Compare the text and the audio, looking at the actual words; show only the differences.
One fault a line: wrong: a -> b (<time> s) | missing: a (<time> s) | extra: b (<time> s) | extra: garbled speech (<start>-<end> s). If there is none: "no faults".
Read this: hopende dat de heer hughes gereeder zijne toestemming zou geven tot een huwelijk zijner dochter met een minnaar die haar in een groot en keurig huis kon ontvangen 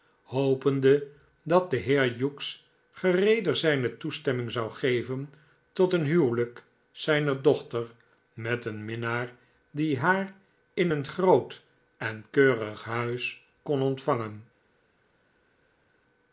no faults